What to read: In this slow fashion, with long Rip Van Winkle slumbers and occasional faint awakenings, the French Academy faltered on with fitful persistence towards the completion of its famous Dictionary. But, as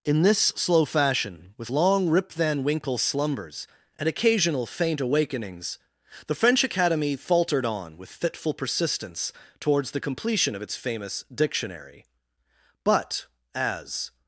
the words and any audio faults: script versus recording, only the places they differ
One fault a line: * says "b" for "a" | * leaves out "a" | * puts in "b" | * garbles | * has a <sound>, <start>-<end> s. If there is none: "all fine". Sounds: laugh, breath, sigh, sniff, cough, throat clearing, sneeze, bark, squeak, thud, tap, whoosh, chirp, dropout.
all fine